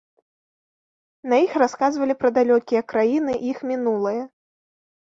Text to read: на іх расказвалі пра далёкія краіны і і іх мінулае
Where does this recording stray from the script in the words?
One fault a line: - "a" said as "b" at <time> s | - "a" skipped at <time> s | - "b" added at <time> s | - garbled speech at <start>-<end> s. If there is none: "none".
- "і" skipped at 3.5 s